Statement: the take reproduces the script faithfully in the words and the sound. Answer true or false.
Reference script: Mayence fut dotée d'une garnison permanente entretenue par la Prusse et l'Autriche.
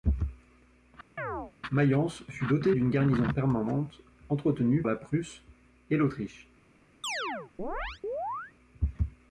false